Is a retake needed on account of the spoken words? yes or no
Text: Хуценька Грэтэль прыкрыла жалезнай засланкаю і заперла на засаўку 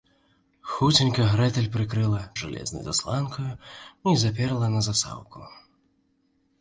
no